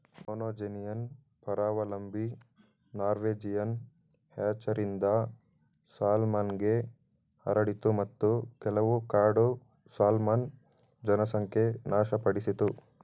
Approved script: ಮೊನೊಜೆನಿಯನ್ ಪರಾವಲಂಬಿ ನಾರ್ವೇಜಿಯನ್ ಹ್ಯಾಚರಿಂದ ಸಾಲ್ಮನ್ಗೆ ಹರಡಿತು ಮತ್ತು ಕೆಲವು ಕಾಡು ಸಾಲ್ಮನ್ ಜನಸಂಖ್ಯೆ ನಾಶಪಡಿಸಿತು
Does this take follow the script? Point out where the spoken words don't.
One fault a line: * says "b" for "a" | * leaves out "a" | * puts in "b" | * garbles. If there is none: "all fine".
all fine